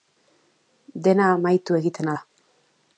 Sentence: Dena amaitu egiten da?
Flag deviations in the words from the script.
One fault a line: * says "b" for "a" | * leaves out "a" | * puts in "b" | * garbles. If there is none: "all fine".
all fine